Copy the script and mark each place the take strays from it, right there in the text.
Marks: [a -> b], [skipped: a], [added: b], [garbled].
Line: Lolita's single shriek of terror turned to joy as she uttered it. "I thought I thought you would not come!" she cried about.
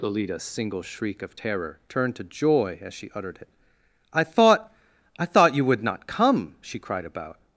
Lolita's single shriek of terror turned to joy as she uttered it. "I thought I thought you would not come!" she cried about.